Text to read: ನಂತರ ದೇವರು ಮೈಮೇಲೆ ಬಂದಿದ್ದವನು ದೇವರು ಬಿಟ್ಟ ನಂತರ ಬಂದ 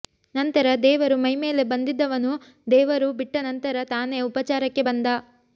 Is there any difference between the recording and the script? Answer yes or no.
yes